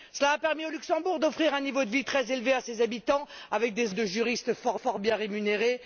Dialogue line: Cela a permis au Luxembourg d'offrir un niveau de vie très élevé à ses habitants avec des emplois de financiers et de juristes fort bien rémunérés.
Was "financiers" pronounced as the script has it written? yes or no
no